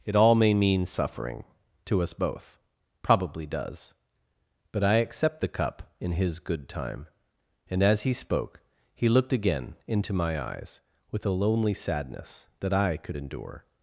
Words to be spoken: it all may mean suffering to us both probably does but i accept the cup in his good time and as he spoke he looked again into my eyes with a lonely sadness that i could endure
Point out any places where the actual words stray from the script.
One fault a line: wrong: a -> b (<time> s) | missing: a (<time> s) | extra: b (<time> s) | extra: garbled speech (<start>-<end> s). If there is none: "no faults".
no faults